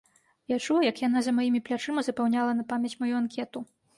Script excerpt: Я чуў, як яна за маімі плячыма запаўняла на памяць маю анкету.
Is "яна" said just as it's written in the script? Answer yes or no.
yes